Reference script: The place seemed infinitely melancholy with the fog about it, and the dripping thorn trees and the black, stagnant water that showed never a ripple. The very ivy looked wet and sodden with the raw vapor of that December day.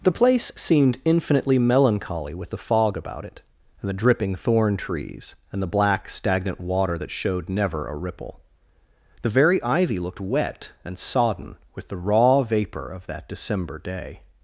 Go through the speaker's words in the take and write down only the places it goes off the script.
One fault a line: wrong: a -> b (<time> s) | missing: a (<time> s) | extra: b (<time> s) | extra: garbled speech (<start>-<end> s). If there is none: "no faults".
no faults